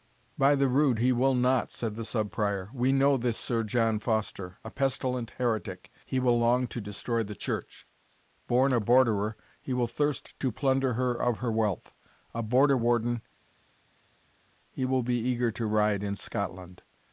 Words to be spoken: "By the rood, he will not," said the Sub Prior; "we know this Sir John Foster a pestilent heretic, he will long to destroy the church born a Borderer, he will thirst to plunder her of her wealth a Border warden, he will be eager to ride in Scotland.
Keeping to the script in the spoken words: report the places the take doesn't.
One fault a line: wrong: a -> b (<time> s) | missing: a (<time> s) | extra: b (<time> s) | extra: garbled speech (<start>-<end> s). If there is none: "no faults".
no faults